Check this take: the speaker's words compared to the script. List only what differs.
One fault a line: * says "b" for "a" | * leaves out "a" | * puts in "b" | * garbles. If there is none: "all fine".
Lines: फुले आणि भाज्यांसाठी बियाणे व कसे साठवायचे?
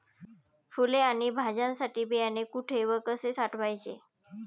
* puts in "कुठे"